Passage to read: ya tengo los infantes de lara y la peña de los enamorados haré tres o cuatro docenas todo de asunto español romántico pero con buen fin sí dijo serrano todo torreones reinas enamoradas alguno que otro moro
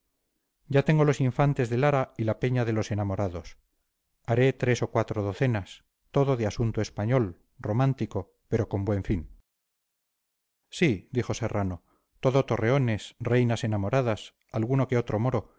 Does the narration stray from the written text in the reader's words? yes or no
no